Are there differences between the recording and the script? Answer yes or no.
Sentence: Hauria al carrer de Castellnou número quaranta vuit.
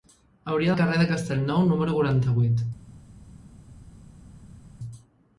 no